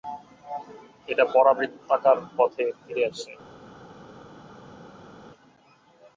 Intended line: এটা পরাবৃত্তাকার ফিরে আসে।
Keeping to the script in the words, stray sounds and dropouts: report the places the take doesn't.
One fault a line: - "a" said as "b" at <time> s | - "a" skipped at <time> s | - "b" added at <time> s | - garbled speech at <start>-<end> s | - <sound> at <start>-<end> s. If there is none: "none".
- "পথে" added at 2.4 s